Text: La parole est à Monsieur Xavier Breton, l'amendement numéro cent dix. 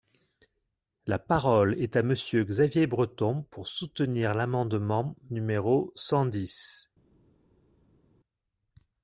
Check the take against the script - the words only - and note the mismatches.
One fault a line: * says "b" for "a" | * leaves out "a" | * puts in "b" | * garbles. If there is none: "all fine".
* puts in "pour soutenir"